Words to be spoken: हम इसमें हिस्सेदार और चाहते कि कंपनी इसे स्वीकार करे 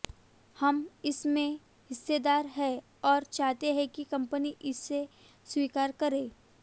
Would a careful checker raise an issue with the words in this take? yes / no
yes